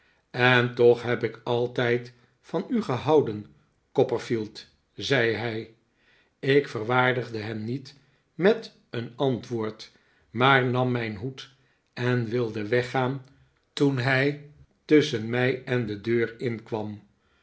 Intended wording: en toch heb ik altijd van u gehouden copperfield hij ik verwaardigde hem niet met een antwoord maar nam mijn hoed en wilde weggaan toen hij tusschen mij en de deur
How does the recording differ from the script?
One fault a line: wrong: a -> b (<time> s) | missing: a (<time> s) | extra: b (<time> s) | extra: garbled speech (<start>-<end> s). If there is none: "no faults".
extra: zei (4.9 s)